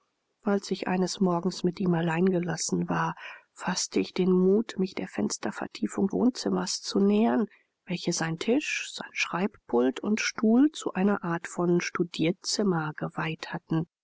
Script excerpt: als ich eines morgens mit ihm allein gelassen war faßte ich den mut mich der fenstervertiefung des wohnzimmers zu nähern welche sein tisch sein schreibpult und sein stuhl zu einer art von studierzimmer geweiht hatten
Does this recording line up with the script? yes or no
no